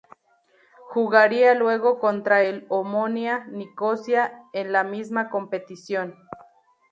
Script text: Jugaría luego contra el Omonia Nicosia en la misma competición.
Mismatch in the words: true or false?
false